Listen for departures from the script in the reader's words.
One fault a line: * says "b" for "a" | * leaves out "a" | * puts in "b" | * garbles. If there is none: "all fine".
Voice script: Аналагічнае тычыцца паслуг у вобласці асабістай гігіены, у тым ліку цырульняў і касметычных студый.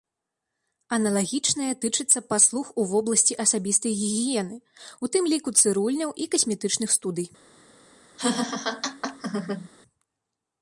all fine